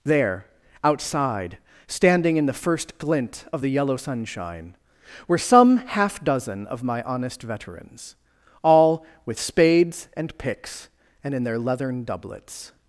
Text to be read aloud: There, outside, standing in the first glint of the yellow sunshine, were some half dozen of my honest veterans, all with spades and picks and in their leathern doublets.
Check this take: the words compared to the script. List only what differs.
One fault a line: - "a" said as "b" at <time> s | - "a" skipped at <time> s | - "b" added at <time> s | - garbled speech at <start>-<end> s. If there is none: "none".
none